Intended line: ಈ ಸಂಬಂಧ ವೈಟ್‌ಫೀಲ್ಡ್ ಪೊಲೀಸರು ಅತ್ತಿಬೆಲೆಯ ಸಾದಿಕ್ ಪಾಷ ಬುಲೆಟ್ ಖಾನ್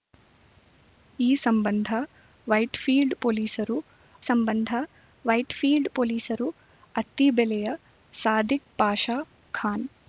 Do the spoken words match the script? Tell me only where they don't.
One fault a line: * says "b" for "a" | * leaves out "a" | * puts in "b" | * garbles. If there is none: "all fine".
* puts in "ಸಂಬಂಧ ವೈಟ್‌ಫೀಲ್ಡ್ ಪೊಲೀಸರು"
* leaves out "ಬುಲೆಟ್"